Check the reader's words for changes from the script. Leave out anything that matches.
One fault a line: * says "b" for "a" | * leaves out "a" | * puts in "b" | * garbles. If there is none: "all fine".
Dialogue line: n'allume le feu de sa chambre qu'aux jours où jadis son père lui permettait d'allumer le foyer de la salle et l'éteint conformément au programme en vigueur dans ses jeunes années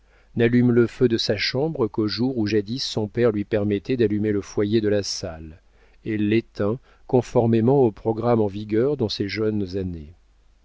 all fine